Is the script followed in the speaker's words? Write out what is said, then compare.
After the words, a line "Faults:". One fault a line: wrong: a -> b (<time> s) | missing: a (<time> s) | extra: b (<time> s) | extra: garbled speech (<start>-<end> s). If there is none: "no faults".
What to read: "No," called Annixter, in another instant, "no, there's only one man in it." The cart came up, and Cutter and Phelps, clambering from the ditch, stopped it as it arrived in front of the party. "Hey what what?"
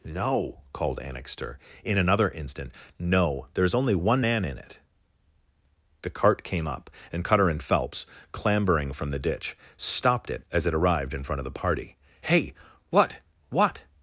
"No," called Annixter, in another instant, "no, there's only one man in it." The cart came up, and Cutter and Phelps, clambering from the ditch, stopped it as it arrived in front of the party. "Hey what what?"
Faults:
no faults